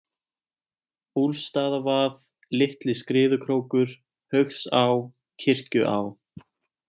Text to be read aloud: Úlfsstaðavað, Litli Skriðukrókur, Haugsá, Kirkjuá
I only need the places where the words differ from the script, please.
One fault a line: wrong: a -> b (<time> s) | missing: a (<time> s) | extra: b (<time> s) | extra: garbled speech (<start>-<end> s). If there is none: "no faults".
no faults